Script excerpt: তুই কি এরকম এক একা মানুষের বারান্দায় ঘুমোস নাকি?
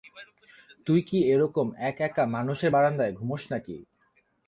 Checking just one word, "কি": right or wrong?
right